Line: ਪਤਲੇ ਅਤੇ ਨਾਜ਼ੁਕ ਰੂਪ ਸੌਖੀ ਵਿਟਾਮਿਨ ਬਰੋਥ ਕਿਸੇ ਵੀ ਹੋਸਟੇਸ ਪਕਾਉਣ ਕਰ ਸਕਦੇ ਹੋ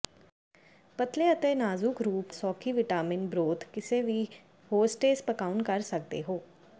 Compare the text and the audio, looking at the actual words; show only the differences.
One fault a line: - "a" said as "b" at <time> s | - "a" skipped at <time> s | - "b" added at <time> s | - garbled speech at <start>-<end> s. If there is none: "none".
none